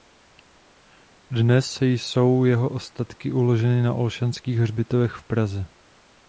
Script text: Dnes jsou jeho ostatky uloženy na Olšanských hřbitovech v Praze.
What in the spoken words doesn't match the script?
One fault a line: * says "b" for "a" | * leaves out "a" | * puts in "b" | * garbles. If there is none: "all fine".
all fine